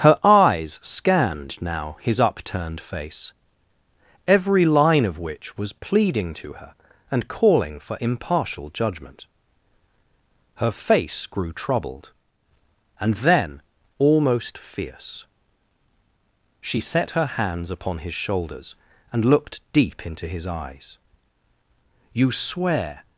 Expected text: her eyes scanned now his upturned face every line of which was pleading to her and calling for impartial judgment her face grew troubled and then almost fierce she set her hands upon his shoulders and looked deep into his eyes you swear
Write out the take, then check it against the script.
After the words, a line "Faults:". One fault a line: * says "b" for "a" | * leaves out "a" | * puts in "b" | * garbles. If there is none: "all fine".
her eyes scanned now his upturned face every line of which was pleading to her and calling for impartial judgment her face grew troubled and then almost fierce she set her hands upon his shoulders and looked deep into his eyes you swear
Faults:
all fine